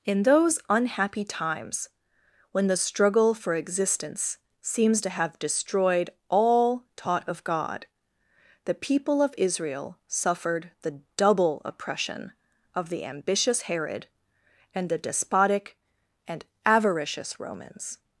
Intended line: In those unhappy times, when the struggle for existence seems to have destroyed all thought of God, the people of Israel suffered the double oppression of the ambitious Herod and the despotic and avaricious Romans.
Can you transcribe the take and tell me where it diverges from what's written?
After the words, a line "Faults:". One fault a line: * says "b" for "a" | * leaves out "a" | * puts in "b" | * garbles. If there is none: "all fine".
In those unhappy times, when the struggle for existence seems to have destroyed all taught of God, the people of Israel suffered the double oppression of the ambitious Herod and the despotic and avaricious Romans.
Faults:
* says "taught" for "thought"